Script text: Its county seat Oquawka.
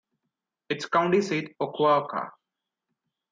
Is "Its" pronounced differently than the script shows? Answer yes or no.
no